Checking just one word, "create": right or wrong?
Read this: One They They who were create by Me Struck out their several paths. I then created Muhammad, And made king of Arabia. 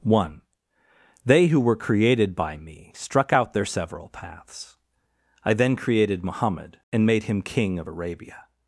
wrong